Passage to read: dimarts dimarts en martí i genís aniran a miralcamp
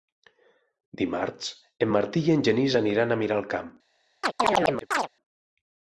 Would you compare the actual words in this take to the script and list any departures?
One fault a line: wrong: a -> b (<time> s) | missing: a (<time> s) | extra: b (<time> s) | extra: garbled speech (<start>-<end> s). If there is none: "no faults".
missing: dimarts (1.5 s)
extra: en (2.3 s)